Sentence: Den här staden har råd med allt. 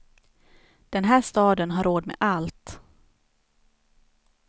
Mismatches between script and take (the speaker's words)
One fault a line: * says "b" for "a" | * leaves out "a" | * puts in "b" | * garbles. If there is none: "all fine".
all fine